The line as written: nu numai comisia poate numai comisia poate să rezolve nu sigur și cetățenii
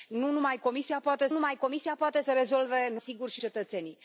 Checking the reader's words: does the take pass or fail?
pass